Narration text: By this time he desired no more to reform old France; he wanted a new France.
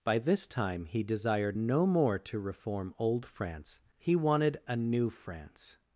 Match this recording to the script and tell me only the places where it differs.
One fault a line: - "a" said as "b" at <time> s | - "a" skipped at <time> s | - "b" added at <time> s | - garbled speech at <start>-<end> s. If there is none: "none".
none